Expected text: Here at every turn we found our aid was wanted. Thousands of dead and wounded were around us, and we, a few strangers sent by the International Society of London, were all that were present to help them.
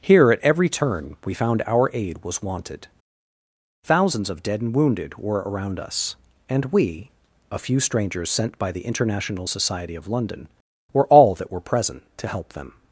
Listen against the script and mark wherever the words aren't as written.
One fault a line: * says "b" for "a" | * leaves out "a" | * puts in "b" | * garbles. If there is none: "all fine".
all fine